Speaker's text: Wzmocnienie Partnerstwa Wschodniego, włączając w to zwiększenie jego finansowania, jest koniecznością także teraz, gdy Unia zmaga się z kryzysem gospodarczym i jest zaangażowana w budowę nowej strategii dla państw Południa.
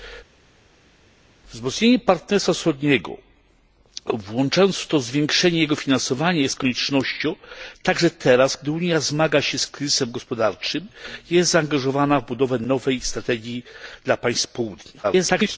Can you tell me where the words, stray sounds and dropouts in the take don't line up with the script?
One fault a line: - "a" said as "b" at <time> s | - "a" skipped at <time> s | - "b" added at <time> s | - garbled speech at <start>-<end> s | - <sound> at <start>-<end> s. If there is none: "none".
- garbled speech at 15.0-15.6 s